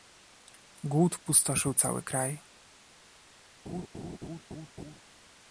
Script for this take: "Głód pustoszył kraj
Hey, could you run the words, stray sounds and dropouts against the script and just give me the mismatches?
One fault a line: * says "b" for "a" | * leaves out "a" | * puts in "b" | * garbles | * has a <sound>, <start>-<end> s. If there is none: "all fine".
* puts in "cały"
* has a laugh, 3.7-5.0 s